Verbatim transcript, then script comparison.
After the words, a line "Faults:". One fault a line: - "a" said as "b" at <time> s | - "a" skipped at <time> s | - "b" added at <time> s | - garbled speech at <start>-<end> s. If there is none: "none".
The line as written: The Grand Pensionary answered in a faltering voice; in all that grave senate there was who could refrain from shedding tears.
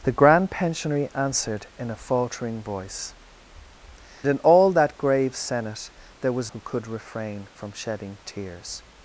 The Grand Pensionary answered in a faltering voice; in all that grave senate there was who could refrain from shedding tears.
Faults:
none